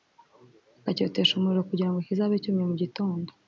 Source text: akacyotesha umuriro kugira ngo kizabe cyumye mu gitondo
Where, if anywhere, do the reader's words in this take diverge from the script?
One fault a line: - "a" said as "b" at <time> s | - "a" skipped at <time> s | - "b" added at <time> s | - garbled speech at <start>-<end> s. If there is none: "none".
none